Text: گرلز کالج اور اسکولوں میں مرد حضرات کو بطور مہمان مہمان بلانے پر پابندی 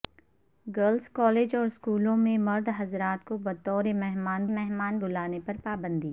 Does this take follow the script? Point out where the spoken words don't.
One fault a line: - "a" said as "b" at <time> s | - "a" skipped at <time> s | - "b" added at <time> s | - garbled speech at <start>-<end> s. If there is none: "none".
none